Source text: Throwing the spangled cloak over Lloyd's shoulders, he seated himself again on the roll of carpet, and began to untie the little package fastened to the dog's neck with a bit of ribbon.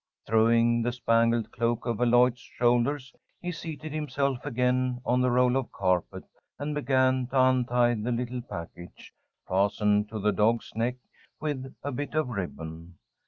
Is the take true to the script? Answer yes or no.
yes